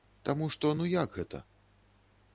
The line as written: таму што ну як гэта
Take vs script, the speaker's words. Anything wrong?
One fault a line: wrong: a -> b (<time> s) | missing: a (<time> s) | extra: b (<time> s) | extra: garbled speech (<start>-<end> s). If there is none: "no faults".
no faults